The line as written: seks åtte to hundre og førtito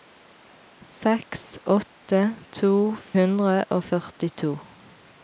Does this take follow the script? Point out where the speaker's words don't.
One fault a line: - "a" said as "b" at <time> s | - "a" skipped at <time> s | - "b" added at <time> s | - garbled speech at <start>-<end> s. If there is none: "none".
none